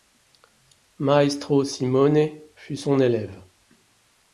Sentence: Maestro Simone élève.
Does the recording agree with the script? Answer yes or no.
no